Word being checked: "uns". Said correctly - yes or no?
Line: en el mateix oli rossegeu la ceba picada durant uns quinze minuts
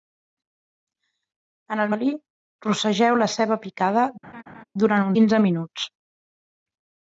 no